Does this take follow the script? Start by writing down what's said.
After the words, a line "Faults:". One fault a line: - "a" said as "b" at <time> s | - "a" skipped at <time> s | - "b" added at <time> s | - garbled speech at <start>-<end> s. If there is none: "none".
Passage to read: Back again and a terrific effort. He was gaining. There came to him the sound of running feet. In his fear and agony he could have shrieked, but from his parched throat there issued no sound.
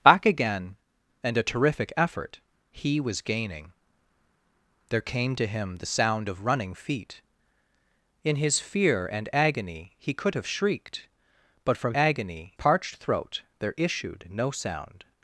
Back again and a terrific effort. He was gaining. There came to him the sound of running feet. In his fear and agony he could have shrieked, but from agony parched throat there issued no sound.
Faults:
- "his" said as "agony" at 11.9 s